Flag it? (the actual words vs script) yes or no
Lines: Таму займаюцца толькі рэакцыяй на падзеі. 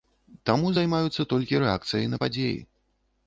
no